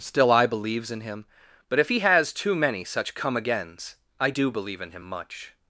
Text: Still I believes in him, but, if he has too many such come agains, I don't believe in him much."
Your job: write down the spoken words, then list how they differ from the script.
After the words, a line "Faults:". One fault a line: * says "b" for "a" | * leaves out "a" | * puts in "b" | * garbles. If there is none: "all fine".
Still I believes in him, but, if he has too many such come agains, I do believe in him much."
Faults:
* says "do" for "don't"